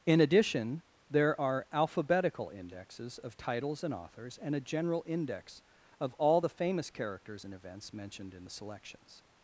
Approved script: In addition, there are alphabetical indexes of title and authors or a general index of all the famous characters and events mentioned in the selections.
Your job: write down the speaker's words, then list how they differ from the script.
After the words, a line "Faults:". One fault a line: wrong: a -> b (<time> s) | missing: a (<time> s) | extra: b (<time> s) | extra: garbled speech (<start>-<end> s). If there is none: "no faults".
In addition, there are alphabetical indexes of titles and authors and a general index of all the famous characters and events mentioned in the selections.
Faults:
wrong: title -> titles (3.4 s)
wrong: or -> and (4.4 s)